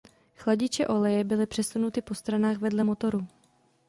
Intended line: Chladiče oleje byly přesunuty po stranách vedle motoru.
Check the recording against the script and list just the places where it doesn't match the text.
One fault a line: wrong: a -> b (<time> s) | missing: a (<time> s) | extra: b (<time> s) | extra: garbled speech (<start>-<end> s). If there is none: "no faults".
no faults